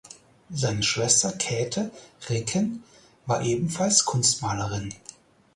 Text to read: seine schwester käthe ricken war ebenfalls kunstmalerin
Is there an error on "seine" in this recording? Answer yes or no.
no